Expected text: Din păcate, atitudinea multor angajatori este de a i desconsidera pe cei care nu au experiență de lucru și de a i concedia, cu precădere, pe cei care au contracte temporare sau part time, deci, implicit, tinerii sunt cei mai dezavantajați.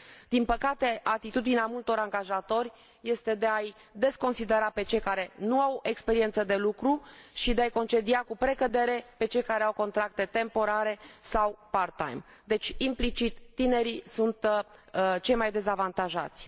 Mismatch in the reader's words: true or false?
false